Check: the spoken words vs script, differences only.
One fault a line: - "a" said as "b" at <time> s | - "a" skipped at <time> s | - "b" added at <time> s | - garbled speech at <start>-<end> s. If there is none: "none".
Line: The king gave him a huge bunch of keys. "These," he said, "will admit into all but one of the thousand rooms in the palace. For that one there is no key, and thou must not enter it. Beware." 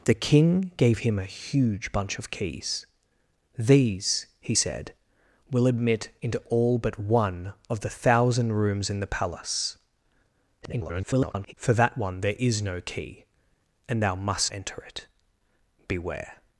- garbled speech at 10.6-11.5 s
- "not" skipped at 14.5 s